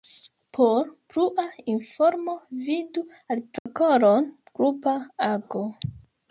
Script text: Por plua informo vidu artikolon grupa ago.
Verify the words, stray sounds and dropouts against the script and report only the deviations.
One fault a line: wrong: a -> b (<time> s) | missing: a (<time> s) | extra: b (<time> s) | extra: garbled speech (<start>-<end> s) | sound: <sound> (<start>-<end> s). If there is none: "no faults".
sound: dropout (3.6-3.7 s)